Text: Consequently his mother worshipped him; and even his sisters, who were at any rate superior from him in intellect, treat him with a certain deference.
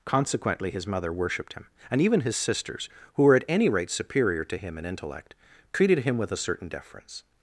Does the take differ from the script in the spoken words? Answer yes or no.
yes